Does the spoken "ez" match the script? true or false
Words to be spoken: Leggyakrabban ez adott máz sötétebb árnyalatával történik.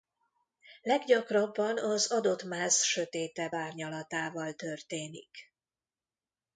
false